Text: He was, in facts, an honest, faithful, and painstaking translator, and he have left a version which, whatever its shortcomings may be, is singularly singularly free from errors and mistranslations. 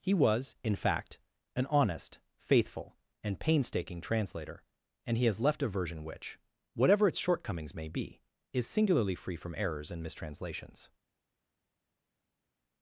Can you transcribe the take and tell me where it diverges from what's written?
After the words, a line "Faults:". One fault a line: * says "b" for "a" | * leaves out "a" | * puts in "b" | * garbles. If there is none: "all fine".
He was, in fact, an honest, faithful, and painstaking translator, and he has left a version which, whatever its shortcomings may be, is singularly free from errors and mistranslations.
Faults:
* says "fact" for "facts"
* says "has" for "have"
* leaves out "singularly"